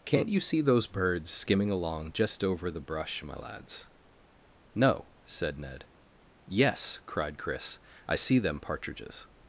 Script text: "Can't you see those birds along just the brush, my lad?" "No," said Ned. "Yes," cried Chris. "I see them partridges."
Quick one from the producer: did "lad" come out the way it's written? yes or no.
no